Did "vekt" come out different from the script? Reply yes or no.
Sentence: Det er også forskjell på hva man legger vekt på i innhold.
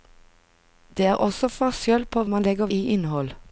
yes